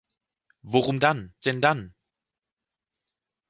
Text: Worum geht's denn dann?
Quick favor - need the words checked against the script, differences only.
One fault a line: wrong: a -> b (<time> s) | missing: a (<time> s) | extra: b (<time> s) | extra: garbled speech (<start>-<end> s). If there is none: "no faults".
wrong: geht's -> dann (1.0 s)